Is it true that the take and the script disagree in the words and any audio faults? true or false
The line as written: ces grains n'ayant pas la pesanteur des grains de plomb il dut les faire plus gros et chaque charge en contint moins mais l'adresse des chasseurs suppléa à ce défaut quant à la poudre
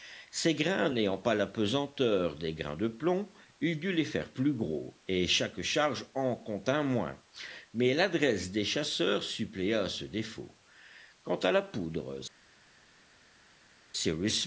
false